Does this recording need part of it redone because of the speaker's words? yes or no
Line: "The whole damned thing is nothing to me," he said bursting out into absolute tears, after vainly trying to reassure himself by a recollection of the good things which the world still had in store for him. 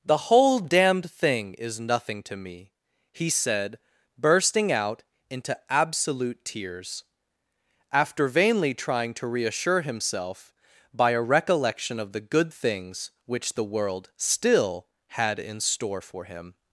no